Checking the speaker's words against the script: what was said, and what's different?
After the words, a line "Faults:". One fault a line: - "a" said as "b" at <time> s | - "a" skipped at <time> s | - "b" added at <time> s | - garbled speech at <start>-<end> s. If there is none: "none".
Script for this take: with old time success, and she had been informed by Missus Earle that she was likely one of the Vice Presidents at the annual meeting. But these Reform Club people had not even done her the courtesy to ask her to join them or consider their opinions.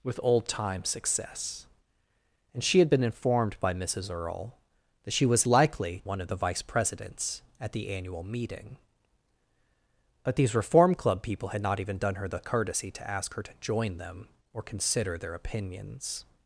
with old time success, and she had been informed by Missus Earle that she was likely one of the Vice Presidents at the annual meeting. But these Reform Club people had not even done her the courtesy to ask her to join them or consider their opinions.
Faults:
none